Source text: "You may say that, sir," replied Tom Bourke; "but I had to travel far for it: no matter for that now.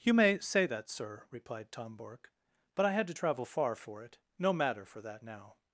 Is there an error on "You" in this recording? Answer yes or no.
no